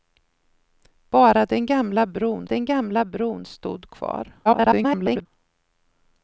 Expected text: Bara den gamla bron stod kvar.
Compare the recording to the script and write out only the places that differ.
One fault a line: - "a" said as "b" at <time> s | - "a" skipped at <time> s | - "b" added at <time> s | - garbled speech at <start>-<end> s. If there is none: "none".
- "den gamla bron" added at 2.4 s
- garbled speech at 4.4-5.3 s